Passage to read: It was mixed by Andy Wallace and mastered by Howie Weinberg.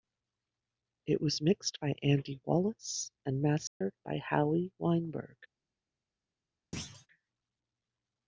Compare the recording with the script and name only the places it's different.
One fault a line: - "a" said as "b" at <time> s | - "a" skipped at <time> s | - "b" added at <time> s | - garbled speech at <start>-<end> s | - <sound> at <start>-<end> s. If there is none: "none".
- dropout at 3.7-3.8 s
- thud at 6.7-7.1 s